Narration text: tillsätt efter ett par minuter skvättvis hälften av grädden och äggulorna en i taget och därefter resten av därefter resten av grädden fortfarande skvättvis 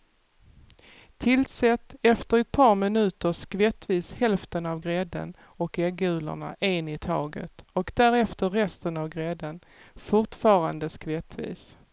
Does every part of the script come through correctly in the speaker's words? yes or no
no